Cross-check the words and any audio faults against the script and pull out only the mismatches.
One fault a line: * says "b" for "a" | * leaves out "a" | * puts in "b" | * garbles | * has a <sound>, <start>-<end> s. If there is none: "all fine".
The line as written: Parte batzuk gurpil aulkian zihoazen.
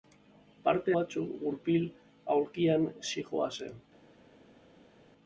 all fine